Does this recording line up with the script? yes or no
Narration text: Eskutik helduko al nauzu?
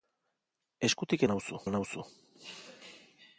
no